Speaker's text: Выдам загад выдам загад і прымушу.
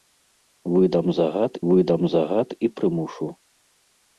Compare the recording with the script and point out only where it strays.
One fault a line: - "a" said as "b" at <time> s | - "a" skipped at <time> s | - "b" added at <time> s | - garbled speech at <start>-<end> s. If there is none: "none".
none